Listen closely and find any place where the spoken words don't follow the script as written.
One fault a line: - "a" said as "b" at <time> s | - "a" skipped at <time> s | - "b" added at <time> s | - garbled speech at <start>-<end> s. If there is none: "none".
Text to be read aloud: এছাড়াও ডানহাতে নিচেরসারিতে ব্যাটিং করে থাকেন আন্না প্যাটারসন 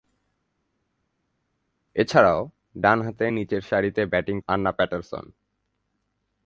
- "করে থাকেন" skipped at 4.4 s